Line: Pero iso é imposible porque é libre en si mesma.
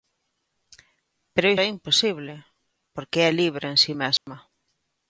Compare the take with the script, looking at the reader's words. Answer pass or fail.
fail